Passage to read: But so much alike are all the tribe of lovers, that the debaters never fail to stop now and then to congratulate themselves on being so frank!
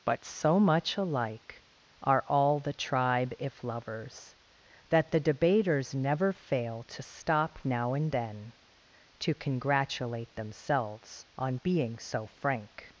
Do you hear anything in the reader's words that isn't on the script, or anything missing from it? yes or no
yes